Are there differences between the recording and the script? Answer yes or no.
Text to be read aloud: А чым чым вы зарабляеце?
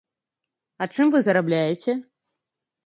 yes